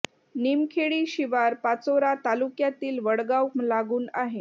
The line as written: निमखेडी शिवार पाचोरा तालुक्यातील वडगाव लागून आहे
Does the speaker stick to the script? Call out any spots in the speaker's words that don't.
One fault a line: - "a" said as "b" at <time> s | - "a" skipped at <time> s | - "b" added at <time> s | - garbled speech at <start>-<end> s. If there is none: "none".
none